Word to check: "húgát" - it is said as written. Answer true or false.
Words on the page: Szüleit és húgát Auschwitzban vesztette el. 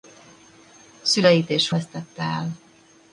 false